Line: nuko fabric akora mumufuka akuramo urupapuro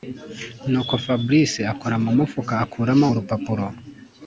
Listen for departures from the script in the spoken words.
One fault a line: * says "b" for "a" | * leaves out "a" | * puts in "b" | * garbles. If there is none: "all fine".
all fine